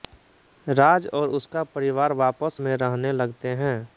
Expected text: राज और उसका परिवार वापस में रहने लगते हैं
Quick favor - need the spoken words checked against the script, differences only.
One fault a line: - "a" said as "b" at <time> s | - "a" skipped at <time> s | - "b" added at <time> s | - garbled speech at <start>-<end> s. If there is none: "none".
none